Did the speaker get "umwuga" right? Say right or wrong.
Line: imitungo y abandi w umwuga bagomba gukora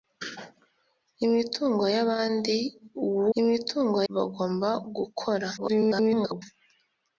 wrong